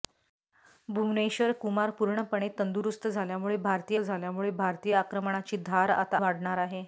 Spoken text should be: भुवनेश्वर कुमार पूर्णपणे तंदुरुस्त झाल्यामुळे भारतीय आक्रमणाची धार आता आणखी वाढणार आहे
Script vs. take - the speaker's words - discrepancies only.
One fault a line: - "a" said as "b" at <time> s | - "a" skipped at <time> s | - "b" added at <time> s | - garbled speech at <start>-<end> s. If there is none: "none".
- "झाल्यामुळे भारतीय" added at 4.0 s
- "आणखी" skipped at 6.2 s